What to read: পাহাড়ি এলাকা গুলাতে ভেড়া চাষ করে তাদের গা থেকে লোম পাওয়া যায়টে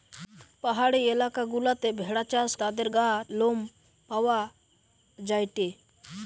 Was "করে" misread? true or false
true